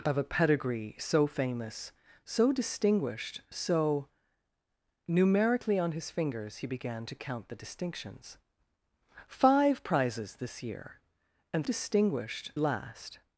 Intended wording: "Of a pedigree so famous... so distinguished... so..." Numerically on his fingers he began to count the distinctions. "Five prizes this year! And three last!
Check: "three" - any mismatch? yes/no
yes